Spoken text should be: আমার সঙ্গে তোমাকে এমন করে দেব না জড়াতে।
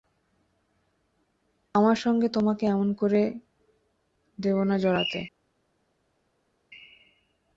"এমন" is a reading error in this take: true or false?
false